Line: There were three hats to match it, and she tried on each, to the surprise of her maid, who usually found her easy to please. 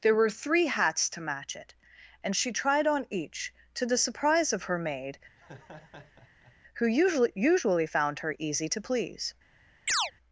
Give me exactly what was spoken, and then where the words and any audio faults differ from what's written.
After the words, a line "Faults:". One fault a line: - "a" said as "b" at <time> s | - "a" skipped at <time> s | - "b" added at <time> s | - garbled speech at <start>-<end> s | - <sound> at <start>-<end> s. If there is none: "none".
There were three hats to match it, and she tried on each, to the surprise of her maid, who usually usually found her easy to please.
Faults:
- laugh at 5.4-6.6 s
- "usually" added at 7.4 s
- chirp at 9.9-10.1 s